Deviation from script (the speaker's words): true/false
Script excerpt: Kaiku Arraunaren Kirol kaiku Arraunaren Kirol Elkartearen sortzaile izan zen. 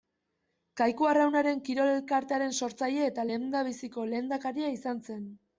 true